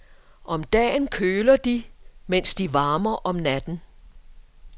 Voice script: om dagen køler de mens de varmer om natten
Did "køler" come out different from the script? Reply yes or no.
no